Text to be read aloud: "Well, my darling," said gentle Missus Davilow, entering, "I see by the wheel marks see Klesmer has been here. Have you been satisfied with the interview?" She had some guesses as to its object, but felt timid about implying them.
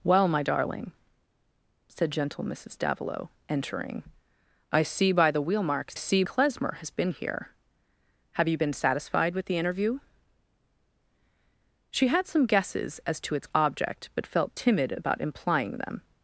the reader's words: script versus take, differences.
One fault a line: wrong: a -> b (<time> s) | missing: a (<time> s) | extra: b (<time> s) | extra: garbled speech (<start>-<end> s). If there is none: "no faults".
no faults